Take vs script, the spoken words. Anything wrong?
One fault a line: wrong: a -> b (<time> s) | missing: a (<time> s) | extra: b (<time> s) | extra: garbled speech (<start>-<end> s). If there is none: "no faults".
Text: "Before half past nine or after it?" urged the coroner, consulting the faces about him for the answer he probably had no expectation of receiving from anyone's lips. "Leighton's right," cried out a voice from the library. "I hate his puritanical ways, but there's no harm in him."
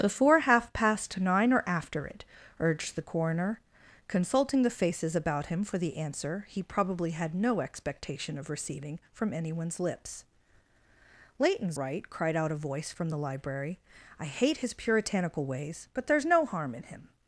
no faults